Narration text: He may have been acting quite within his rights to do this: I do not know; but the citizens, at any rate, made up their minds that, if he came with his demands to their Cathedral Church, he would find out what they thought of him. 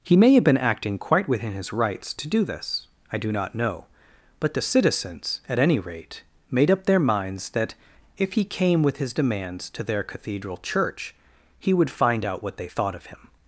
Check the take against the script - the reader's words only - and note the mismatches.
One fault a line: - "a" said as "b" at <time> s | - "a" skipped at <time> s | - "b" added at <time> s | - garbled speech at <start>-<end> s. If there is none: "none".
none